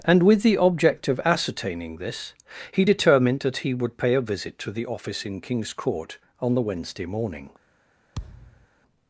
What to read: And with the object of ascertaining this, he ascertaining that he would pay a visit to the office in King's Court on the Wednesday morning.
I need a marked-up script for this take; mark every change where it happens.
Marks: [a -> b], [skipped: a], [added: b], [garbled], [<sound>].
And with the object of ascertaining this, he [ascertaining -> determined] that he would pay a visit to the office in King's Court on the Wednesday morning. [thud]